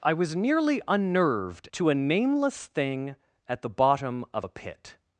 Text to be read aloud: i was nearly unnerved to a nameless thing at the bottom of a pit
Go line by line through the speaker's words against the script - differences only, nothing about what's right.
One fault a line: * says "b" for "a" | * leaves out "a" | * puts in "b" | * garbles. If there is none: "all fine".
all fine